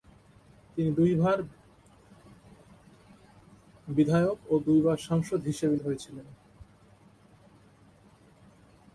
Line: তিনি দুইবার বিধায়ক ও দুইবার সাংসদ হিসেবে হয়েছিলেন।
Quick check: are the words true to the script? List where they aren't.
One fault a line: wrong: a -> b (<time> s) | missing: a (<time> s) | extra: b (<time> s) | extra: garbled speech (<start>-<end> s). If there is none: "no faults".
no faults